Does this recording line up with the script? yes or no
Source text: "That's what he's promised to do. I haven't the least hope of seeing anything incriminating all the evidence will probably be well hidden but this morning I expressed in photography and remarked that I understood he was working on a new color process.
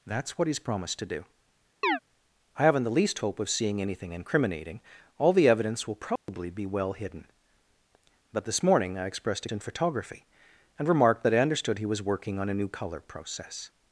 yes